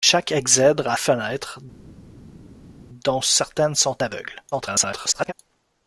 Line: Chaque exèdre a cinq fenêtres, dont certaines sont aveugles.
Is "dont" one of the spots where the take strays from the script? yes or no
no